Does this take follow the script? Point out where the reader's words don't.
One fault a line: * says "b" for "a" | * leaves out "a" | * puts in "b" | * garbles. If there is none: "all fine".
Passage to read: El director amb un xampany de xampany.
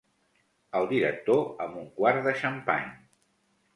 * says "quart" for "xampany"